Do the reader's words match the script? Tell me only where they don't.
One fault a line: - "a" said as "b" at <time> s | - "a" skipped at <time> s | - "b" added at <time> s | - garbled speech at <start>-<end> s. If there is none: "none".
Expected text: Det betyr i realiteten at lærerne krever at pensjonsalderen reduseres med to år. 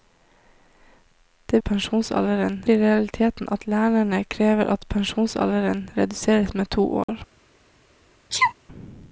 - "betyr" said as "pensjonsalderen" at 1.6 s